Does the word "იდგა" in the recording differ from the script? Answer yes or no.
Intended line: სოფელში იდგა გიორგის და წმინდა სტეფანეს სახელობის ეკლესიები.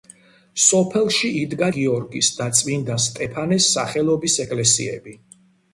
no